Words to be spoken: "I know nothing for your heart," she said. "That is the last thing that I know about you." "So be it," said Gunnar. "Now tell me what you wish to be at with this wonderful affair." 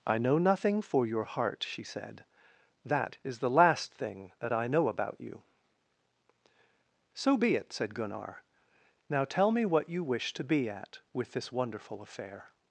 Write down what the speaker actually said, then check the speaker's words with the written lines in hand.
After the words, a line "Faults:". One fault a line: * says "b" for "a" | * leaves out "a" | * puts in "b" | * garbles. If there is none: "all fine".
"I know nothing for your heart," she said. "That is the last thing that I know about you." "So be it," said Gunnar. "Now tell me what you wish to be at with this wonderful affair."
Faults:
all fine